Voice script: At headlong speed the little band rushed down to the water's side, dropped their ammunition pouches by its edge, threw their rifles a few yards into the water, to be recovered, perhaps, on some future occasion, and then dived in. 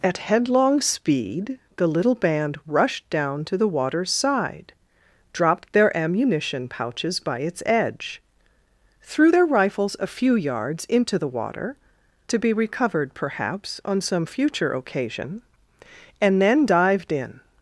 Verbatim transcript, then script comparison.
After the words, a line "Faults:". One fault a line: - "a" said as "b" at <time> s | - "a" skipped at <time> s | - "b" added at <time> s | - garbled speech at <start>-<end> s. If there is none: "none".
At headlong speed the little band rushed down to the water's side, dropped their ammunition pouches by its edge, threw their rifles a few yards into the water, to be recovered, perhaps, on some future occasion, and then dived in.
Faults:
none